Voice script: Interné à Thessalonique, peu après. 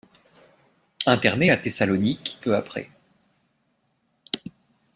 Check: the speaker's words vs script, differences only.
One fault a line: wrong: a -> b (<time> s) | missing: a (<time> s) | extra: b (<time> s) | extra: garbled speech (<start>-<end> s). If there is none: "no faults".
no faults